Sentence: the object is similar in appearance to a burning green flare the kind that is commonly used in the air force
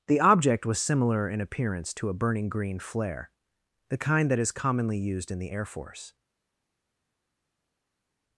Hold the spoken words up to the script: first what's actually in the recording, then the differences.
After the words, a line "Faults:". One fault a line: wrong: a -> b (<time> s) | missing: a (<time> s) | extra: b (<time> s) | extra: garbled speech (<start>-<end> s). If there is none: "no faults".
the object was similar in appearance to a burning green flare the kind that is commonly used in the air force
Faults:
wrong: is -> was (0.7 s)